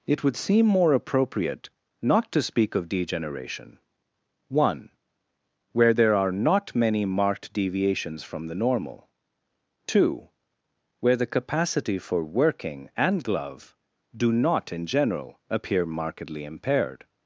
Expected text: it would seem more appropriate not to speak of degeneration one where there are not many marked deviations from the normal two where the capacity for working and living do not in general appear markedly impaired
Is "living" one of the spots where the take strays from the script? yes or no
yes